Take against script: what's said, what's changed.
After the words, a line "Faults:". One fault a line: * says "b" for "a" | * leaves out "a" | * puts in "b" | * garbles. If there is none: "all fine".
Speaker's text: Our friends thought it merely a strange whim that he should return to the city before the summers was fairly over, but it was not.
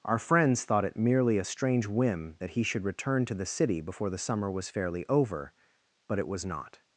Our friends thought it merely a strange whim that he should return to the city before the summer was fairly over, but it was not.
Faults:
* says "summer" for "summers"